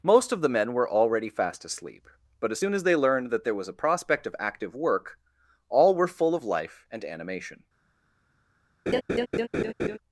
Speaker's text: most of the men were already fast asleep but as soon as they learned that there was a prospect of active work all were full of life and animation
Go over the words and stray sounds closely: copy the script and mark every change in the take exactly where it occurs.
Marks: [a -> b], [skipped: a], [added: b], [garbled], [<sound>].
most of the men were already fast asleep but as soon as they learned that there was a prospect of active work all were full of life and animation [laugh]